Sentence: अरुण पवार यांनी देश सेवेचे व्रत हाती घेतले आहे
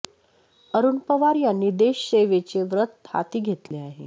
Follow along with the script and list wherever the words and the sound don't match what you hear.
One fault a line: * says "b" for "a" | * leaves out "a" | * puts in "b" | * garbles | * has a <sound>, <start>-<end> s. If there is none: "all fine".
* has a dropout, 3.7-3.7 s